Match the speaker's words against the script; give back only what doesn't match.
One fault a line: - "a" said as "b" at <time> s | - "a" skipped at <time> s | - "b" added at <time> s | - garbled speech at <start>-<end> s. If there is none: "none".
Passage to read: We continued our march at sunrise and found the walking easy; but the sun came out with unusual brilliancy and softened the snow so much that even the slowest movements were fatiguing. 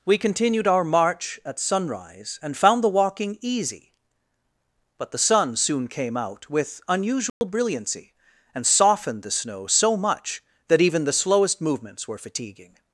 - "soon" added at 5.6 s